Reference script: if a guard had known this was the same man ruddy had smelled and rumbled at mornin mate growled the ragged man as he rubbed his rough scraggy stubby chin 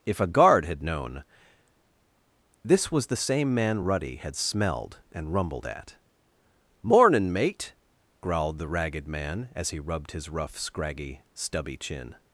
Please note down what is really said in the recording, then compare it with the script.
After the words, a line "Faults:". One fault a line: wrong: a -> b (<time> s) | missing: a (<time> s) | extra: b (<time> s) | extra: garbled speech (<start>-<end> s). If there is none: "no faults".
if a guard had known this was the same man ruddy had smelled and rumbled at mornin mate growled the ragged man as he rubbed his rough scraggy stubby chin
Faults:
no faults